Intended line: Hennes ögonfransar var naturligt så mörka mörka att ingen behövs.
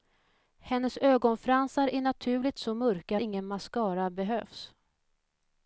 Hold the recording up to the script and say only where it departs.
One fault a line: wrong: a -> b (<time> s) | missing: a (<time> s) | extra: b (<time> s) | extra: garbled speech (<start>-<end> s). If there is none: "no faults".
wrong: var -> är (1.9 s)
missing: mörka (3.2 s)
extra: mascara (3.5 s)